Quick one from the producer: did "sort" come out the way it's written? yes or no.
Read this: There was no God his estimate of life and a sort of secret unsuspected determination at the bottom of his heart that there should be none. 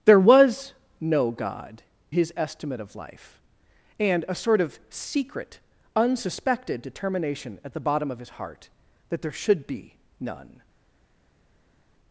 yes